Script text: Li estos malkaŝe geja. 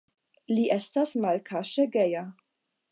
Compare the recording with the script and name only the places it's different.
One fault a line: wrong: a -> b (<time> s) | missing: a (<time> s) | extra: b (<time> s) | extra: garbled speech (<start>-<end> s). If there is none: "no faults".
wrong: estos -> estas (0.8 s)